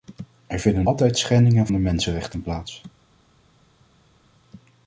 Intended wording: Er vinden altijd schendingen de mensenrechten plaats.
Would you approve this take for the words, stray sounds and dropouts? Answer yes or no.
yes